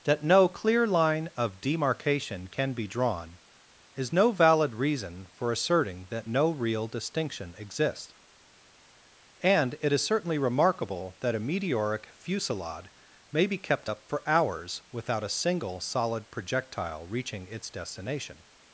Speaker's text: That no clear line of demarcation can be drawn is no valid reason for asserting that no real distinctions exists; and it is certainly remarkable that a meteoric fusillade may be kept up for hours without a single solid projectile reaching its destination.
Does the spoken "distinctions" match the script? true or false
false